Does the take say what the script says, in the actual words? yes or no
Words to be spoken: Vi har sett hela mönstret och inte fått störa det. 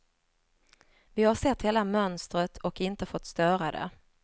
yes